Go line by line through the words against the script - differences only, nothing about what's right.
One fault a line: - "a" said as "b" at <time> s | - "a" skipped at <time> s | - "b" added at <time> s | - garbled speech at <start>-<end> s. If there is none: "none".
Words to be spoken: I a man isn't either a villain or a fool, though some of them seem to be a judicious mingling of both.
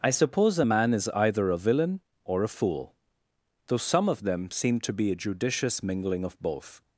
- "suppose" added at 0.1 s
- "isn't" said as "is" at 0.9 s